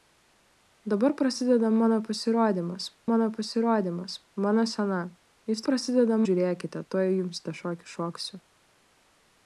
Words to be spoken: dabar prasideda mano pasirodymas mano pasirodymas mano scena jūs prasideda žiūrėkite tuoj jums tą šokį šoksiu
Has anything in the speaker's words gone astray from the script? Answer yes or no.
no